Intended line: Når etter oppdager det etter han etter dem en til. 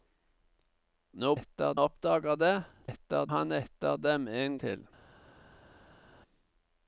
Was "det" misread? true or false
false